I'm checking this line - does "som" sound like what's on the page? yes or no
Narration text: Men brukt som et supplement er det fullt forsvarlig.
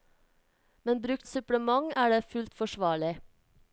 no